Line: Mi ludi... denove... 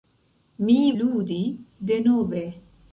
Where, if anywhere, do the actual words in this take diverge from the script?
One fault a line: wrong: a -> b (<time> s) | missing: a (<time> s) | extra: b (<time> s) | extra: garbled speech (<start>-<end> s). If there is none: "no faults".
no faults